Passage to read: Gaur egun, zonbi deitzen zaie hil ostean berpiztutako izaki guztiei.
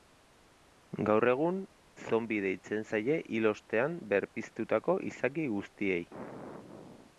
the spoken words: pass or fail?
pass